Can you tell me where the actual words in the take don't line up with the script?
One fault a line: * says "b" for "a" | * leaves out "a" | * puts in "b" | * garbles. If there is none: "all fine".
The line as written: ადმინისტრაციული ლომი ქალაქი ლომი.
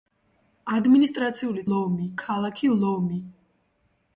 all fine